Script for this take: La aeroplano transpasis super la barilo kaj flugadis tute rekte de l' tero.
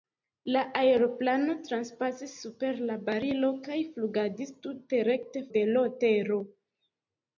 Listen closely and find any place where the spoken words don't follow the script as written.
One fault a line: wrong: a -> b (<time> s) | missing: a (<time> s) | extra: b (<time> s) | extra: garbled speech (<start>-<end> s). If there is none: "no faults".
no faults